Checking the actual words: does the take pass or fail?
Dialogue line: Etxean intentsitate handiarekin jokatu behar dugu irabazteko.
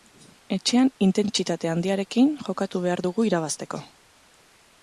pass